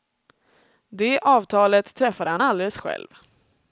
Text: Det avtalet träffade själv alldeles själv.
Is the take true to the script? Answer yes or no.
no